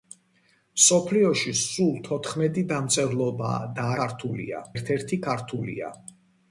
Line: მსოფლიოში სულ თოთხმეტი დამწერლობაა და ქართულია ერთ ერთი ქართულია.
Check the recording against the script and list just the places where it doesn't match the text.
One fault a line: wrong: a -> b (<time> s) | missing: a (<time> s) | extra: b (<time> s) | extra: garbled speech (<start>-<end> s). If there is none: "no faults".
no faults